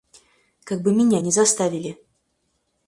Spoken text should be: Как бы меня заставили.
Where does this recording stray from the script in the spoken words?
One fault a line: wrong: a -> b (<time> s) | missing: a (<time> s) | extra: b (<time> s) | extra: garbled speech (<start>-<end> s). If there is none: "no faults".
extra: не (1.2 s)